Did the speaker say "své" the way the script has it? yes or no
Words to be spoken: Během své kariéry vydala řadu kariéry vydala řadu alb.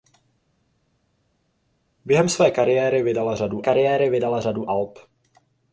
yes